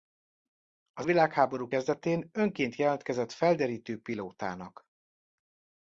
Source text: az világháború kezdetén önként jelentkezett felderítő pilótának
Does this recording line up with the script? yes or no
yes